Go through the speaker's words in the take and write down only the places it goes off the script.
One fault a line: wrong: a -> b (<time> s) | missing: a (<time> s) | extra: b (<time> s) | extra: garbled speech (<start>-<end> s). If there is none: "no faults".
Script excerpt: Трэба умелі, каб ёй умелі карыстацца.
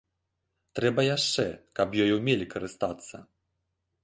wrong: умелі -> яшчэ (1.1 s)